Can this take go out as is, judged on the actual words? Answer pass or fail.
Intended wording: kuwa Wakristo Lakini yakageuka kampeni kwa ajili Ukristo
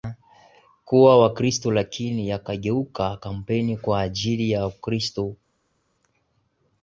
fail